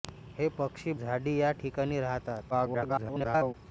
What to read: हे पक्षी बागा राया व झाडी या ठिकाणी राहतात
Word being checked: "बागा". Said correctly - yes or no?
no